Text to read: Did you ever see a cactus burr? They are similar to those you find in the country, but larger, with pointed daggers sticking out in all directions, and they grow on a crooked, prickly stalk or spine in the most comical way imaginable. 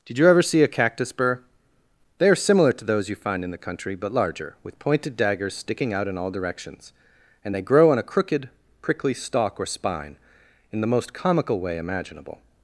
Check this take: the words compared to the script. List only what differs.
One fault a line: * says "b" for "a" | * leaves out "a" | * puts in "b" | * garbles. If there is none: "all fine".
all fine